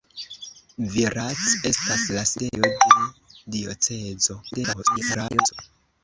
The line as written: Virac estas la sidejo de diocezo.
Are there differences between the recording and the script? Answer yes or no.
yes